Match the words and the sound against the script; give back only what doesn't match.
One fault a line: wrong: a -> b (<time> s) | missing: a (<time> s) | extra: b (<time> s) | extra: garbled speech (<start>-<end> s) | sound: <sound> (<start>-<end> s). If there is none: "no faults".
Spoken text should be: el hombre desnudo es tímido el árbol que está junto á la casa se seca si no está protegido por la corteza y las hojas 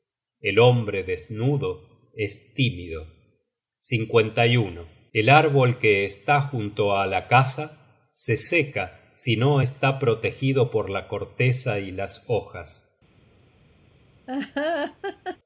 sound: laugh (14.3-15.4 s)